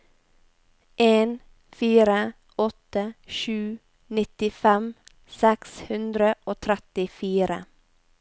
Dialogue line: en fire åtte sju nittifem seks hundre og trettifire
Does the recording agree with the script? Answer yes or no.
yes